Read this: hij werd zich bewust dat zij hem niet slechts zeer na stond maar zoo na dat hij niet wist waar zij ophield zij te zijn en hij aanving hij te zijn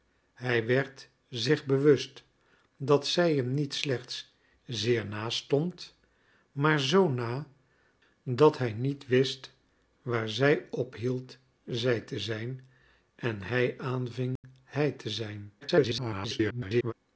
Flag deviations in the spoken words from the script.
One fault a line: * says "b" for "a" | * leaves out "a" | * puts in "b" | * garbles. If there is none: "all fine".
* garbles